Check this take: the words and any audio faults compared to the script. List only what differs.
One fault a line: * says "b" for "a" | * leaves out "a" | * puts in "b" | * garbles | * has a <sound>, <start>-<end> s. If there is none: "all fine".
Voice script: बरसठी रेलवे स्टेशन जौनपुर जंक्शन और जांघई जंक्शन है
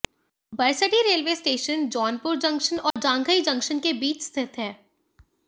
* has a dropout, 2.9-3.0 s
* puts in "के बीच स्थित"